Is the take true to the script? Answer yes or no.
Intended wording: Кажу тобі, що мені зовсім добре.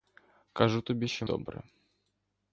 no